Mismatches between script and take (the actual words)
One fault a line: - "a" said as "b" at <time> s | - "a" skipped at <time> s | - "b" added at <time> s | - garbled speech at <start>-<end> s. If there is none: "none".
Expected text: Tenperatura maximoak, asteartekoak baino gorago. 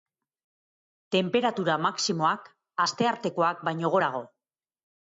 none